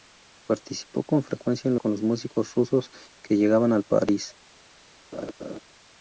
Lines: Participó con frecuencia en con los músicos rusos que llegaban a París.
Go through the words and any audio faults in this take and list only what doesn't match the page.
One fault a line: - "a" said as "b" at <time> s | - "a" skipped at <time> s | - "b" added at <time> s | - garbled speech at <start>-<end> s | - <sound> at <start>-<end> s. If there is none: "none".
- laugh at 5.1-5.6 s